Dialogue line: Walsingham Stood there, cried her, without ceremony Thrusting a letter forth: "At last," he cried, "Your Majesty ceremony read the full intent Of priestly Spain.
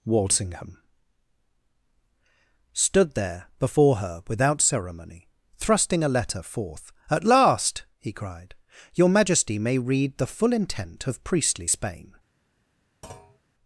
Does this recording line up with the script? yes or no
no